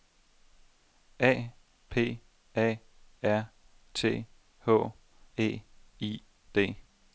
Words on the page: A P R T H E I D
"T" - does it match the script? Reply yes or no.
yes